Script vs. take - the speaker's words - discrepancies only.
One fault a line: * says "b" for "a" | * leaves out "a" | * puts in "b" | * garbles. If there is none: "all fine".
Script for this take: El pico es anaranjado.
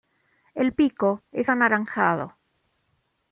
all fine